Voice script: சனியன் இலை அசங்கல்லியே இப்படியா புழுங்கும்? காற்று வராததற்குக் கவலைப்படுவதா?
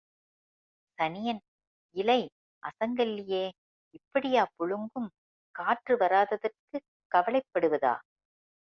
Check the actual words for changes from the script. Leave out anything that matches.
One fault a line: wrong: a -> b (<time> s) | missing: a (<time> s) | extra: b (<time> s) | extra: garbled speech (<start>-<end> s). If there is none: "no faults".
no faults